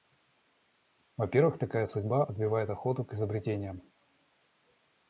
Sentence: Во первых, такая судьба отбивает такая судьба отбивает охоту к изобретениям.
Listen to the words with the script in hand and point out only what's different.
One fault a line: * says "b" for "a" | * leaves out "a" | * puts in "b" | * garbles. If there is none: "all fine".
* leaves out "такая судьба отбивает"